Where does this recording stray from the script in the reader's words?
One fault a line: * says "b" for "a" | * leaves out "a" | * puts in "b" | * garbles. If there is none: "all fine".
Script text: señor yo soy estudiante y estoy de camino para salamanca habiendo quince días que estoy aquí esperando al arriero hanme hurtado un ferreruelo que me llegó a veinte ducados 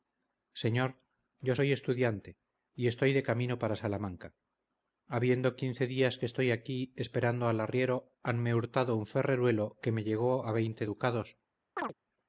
all fine